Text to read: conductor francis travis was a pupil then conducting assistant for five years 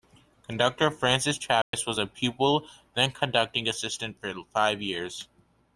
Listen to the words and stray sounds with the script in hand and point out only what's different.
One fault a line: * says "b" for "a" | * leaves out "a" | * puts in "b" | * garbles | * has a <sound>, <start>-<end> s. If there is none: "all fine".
* has a dropout, 1.6-1.7 s